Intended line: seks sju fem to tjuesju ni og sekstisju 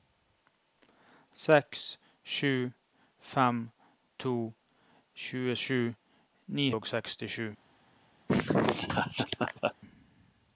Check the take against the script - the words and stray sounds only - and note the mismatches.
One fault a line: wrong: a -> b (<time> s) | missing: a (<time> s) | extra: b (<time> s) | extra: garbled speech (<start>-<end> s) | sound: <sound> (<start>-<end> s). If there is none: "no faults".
sound: laugh (8.3-9.7 s)